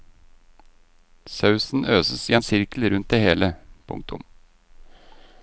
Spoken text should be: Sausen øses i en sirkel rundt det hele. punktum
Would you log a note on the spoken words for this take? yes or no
no